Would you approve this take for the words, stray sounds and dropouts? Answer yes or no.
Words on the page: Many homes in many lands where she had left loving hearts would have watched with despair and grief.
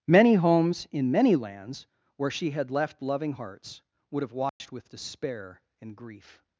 no